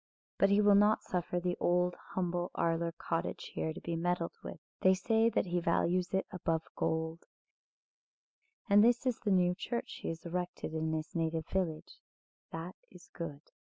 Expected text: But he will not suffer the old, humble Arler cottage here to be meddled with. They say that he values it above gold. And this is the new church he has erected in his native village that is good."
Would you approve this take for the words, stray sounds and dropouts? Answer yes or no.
yes